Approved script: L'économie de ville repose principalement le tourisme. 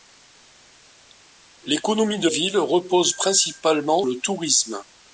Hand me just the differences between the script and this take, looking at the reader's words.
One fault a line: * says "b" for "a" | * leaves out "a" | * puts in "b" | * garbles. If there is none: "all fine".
all fine